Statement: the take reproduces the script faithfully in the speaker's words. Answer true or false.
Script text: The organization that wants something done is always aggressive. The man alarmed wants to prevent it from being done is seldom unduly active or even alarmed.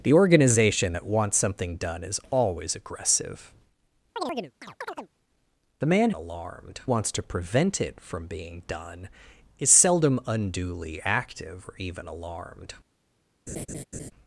true